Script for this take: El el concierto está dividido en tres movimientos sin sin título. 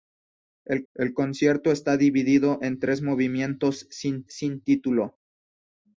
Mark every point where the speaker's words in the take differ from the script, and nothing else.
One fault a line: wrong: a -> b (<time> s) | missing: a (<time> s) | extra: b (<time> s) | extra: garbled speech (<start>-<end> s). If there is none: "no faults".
no faults